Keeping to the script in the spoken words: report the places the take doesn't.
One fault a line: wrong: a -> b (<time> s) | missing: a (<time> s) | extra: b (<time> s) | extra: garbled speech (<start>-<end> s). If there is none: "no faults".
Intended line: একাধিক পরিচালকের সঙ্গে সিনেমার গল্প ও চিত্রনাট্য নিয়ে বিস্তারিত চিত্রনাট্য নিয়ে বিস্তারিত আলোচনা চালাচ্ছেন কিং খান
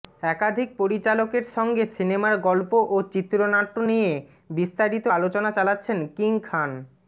missing: চিত্রনাট্য নিয়ে বিস্তারিত (5.0 s)